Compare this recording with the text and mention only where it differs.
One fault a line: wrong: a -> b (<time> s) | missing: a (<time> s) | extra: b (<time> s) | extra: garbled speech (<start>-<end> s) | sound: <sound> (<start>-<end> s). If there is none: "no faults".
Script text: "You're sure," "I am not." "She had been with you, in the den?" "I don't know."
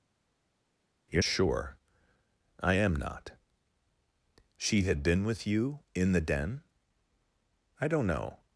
no faults